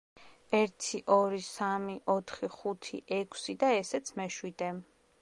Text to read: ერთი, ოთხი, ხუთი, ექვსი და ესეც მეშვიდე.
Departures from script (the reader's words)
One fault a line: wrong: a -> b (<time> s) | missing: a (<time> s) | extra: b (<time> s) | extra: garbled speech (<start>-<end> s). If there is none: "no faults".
extra: ორი სამი (1.1 s)